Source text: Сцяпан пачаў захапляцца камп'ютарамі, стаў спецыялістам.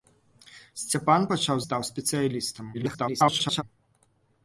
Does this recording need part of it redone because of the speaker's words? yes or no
yes